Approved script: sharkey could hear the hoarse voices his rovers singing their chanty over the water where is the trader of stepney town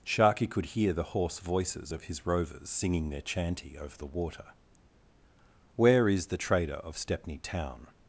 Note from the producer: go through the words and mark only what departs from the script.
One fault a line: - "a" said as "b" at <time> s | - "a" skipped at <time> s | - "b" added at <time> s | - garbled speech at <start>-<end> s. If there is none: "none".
- "of" added at 1.9 s